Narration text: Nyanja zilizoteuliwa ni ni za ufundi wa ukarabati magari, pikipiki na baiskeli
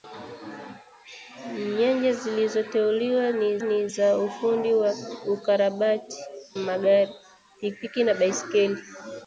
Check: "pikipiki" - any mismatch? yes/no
no